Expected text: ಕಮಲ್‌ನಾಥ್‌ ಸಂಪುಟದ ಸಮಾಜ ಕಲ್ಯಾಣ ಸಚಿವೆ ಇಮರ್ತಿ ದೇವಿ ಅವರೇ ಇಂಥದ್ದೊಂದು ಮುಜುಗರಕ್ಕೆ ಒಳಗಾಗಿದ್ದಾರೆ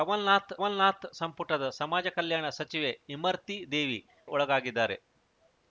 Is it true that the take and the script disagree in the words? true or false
true